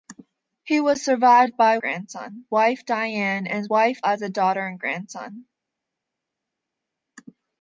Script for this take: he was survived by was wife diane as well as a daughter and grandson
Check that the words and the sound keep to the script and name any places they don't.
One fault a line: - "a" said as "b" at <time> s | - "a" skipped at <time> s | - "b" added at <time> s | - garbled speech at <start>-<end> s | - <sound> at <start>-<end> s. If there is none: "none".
- "was" said as "grandson" at 1.8 s
- "well" said as "wife" at 3.7 s